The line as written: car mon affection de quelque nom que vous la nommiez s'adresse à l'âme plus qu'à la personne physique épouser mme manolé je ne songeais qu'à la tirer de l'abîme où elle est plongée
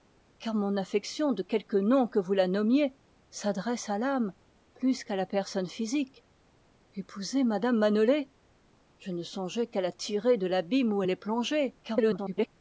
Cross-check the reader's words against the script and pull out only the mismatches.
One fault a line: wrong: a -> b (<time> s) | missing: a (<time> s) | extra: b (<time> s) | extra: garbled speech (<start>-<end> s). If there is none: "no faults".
extra: garbled speech (11.8-12.5 s)